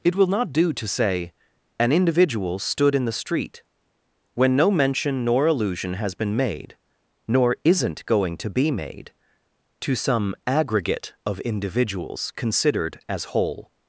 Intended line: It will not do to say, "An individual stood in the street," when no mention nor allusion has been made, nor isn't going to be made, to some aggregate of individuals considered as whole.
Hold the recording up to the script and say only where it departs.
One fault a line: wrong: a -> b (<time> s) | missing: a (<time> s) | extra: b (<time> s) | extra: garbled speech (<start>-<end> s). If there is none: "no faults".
no faults